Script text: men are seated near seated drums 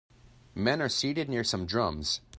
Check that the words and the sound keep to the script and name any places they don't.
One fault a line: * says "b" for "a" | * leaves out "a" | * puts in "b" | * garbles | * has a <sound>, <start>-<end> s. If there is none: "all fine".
* says "some" for "seated"